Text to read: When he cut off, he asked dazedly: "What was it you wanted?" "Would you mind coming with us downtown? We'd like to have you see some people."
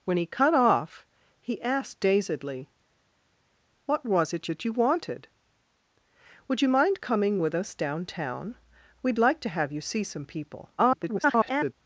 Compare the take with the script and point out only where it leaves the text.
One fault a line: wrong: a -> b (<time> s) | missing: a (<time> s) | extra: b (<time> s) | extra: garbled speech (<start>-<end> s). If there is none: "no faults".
extra: it (4.5 s)
extra: garbled speech (10.8-11.7 s)